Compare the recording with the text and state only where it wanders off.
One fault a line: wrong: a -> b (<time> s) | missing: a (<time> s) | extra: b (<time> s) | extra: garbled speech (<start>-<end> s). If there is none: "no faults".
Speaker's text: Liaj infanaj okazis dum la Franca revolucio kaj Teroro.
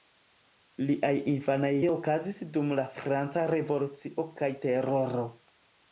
no faults